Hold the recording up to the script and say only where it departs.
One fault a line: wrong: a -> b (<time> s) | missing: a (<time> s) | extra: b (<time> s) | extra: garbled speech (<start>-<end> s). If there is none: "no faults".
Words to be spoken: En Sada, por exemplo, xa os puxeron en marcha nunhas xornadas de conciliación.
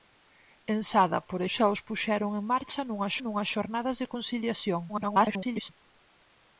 missing: exemplo (1.4 s)
extra: nunhas (3.2 s)
extra: garbled speech (4.9-5.7 s)